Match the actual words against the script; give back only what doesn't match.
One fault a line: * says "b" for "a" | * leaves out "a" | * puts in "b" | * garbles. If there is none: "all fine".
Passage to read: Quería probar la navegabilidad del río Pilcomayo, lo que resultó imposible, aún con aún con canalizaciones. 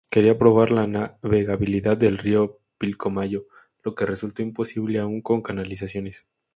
* leaves out "aún con"